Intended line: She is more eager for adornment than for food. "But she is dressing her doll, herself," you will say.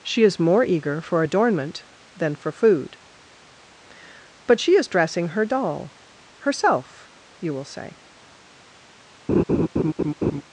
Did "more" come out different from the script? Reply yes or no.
no